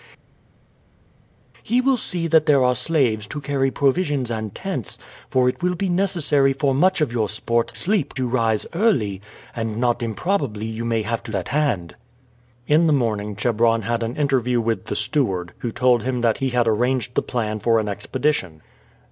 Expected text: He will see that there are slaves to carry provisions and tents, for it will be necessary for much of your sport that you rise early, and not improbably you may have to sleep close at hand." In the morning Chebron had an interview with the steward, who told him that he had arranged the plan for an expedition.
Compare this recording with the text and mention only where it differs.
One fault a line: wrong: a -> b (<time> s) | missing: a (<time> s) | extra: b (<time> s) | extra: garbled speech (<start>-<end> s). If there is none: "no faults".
wrong: that -> sleep (7.7 s)
missing: sleep close (11.3 s)